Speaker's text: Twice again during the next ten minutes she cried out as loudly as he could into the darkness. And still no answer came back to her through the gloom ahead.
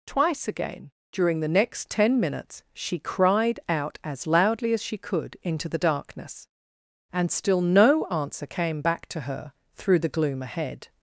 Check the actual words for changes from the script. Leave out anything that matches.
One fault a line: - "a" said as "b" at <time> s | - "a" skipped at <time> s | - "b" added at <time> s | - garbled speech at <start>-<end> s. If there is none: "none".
- "he" said as "she" at 4.8 s